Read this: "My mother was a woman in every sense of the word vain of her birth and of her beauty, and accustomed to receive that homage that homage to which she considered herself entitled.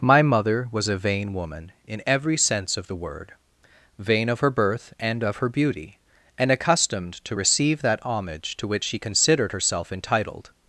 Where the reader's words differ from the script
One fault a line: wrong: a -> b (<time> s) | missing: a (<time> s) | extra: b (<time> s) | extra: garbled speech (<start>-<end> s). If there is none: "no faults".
extra: vain (1.0 s)
missing: that homage (8.6 s)